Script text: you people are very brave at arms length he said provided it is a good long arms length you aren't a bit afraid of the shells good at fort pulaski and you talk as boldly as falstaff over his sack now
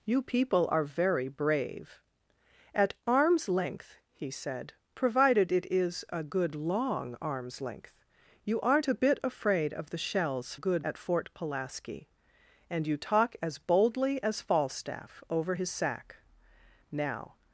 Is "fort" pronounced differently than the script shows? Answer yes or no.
no